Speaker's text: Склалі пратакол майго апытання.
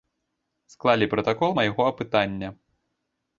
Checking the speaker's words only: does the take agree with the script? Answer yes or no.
yes